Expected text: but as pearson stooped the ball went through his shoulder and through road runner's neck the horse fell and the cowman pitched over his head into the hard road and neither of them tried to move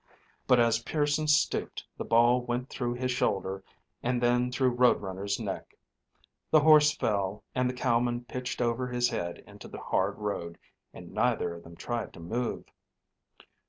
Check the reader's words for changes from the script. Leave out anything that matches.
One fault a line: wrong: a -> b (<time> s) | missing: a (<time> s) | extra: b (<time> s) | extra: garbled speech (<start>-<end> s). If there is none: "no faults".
extra: then (4.2 s)